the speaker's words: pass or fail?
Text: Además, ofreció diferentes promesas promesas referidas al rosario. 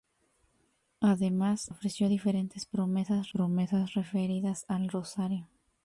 pass